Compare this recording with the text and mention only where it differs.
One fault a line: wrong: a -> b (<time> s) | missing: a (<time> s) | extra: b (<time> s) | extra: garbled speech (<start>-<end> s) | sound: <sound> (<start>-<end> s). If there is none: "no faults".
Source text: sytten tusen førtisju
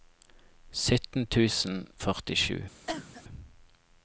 sound: cough (2.9-3.2 s)